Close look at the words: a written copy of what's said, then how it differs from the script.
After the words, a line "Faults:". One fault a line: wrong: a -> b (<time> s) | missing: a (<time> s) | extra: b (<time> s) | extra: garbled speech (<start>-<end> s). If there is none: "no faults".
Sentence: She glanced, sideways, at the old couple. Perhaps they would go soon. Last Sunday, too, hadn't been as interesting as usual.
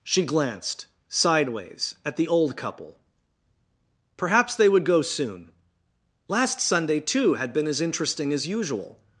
She glanced, sideways, at the old couple. Perhaps they would go soon. Last Sunday, too, had been as interesting as usual.
Faults:
wrong: hadn't -> had (7.3 s)